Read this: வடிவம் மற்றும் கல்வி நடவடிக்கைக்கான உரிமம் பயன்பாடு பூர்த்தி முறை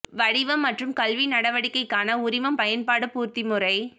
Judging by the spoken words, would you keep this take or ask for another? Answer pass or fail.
pass